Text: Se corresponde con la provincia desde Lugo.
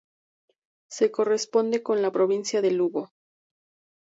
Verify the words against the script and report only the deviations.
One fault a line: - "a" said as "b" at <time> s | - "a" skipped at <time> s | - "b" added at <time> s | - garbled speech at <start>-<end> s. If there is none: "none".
- "desde" said as "de" at 2.6 s